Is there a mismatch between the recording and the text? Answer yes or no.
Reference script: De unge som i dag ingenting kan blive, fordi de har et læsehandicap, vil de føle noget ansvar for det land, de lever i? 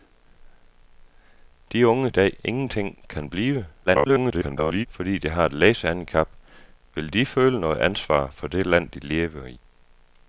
yes